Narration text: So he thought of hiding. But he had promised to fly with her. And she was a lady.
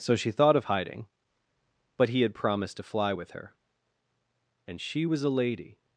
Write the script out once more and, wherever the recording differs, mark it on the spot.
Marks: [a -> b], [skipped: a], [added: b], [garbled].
So [he -> she] thought of hiding. But he had promised to fly with her. And she was a lady.